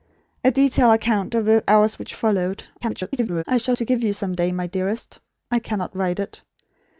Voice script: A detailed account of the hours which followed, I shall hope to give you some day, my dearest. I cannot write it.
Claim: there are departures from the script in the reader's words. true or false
true